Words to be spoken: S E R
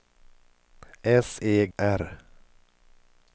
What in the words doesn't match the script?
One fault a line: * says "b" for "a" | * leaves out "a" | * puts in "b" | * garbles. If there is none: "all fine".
all fine